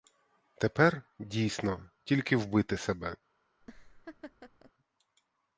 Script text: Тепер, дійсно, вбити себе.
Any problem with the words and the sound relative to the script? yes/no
yes